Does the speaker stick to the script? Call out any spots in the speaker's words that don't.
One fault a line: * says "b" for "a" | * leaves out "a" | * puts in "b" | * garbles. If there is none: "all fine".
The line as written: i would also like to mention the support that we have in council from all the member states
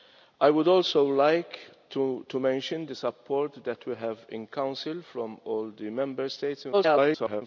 * garbles